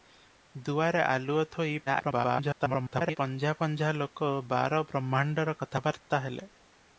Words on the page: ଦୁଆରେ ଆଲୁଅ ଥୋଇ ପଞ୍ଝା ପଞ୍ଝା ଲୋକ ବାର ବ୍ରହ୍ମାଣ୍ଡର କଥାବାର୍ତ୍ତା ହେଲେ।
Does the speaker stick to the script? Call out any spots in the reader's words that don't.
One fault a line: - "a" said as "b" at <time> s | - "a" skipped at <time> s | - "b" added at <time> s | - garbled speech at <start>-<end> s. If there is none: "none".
- garbled speech at 1.9-3.2 s